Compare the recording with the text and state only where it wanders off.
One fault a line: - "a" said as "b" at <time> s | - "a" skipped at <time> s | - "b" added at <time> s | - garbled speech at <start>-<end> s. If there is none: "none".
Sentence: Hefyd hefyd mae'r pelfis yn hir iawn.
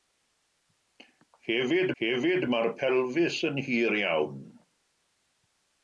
none